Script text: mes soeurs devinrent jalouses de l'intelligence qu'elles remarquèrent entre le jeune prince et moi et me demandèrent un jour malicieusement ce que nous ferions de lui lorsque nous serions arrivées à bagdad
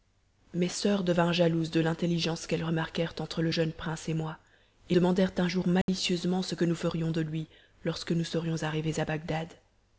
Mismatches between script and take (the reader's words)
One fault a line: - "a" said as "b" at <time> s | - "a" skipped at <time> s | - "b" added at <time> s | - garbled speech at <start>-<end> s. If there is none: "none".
- "me" skipped at 5.0 s